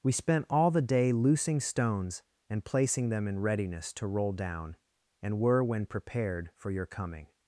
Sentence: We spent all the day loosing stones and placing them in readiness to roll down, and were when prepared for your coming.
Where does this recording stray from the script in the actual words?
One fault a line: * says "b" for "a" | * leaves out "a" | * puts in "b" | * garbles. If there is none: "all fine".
all fine